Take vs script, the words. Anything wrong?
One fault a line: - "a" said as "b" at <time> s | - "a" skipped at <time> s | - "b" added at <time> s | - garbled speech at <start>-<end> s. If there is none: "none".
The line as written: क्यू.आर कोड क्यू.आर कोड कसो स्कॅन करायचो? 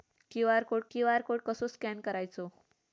none